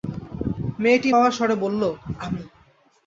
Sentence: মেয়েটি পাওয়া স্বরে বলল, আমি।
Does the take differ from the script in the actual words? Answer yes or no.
no